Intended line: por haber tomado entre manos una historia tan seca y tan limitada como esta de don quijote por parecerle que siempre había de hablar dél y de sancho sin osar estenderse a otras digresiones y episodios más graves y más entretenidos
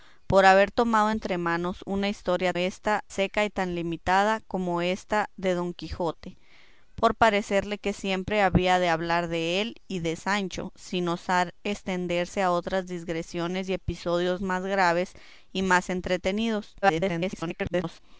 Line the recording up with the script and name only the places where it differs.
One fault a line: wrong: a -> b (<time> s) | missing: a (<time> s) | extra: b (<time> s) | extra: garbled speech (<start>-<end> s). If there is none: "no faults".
wrong: tan -> esta (2.6 s)
extra: garbled speech (16.8-18.0 s)